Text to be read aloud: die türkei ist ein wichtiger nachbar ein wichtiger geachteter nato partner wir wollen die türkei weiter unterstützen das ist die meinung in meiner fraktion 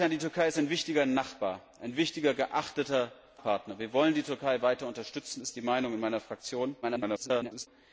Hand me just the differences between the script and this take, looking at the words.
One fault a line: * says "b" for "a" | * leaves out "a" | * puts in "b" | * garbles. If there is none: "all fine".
* leaves out "nato"
* leaves out "das"
* garbles